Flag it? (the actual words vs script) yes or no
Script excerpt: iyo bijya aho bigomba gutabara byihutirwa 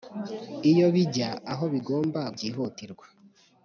yes